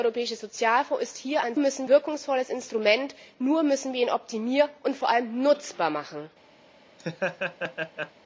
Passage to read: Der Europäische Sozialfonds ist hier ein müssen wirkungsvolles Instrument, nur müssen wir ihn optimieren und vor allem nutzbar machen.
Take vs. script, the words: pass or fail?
pass